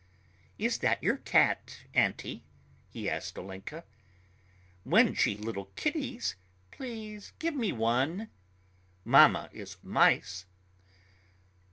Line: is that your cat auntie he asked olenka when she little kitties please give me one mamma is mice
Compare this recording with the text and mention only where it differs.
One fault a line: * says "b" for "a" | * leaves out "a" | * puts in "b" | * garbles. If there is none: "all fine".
all fine